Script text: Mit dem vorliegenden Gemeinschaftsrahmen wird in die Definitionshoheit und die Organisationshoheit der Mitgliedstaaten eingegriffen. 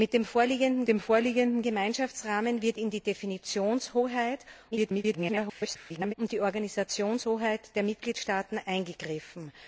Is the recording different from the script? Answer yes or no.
yes